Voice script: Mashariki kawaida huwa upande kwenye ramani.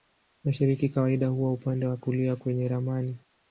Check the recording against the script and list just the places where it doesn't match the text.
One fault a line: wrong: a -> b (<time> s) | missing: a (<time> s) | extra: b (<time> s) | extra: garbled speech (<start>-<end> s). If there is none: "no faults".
extra: wa kulia (1.9 s)